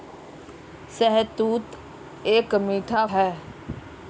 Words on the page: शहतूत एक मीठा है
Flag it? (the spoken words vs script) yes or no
no